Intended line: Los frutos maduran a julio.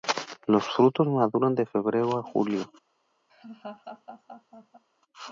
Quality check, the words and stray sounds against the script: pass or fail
fail